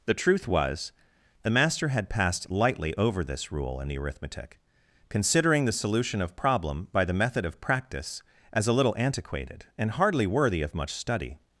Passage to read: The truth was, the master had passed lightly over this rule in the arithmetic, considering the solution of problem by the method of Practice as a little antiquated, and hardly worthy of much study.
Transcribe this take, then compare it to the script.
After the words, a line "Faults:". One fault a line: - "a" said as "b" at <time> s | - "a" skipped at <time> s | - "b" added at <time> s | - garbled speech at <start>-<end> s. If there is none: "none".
The truth was, the master had passed lightly over this rule in the arithmetic, considering the solution of problem by the method of Practice as a little antiquated, and hardly worthy of much study.
Faults:
none